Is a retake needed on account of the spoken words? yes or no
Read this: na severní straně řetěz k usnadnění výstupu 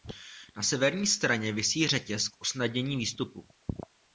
yes